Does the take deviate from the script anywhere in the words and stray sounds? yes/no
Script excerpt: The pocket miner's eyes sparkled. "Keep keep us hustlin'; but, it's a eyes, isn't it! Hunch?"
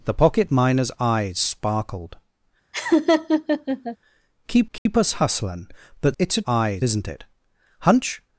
yes